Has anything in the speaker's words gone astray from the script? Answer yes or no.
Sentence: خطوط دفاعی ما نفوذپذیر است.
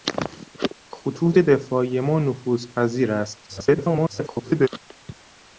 yes